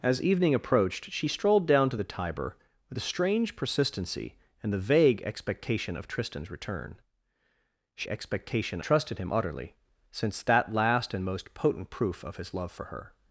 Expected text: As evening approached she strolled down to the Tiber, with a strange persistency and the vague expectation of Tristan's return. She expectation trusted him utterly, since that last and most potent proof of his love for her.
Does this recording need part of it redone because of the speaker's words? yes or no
no